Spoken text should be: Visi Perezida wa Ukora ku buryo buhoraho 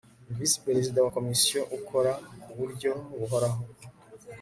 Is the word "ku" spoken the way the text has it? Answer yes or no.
yes